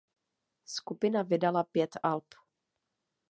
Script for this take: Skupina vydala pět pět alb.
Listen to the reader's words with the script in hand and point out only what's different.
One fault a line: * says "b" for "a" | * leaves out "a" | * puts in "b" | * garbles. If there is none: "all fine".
* leaves out "pět"